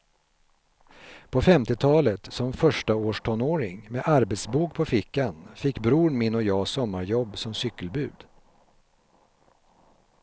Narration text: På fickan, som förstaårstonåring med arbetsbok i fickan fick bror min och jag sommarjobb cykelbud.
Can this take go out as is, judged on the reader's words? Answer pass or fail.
fail